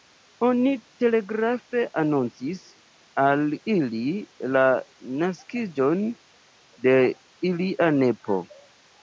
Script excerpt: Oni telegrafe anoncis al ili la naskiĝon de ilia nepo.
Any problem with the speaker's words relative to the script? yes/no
no